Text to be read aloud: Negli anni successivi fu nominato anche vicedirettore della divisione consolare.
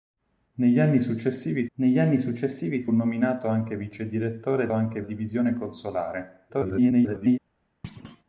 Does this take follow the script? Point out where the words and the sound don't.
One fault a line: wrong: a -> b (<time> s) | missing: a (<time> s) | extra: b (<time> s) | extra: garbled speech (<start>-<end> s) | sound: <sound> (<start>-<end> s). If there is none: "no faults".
extra: negli anni successivi (1.8 s)
wrong: della -> anche (4.7 s)
extra: garbled speech (6.5-7.4 s)
sound: thud (7.8-8.2 s)